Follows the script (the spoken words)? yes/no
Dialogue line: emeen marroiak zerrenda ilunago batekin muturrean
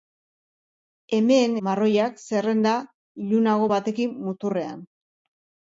yes